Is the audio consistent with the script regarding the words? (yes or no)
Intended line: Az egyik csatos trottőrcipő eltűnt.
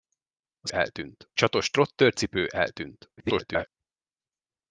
no